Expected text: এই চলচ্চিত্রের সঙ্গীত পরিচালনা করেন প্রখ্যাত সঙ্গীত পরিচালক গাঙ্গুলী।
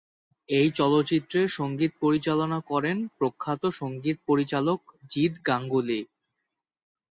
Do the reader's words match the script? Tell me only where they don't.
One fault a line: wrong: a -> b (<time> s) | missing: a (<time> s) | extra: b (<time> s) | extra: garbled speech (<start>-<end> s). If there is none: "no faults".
extra: জিৎ (5.1 s)